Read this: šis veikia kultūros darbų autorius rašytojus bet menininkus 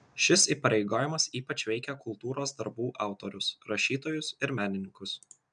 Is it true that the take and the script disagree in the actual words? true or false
true